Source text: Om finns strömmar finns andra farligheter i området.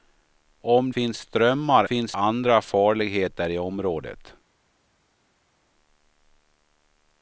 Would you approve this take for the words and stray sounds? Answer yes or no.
yes